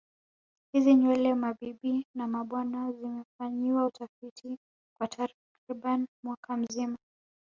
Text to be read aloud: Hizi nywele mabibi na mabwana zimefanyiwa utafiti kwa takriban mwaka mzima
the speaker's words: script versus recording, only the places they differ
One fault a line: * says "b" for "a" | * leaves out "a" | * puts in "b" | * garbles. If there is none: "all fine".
all fine